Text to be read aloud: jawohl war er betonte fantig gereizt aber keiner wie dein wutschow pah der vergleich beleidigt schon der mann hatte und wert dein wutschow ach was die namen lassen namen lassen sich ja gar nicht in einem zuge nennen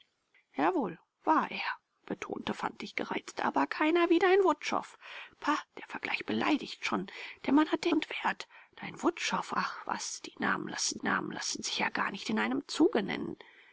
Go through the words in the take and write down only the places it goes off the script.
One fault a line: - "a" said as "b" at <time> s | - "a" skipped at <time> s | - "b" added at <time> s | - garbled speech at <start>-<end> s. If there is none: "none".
none